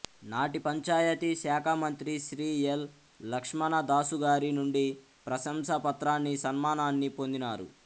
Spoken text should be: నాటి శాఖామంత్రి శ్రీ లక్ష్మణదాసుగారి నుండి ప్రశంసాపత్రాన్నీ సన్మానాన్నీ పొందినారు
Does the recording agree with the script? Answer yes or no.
no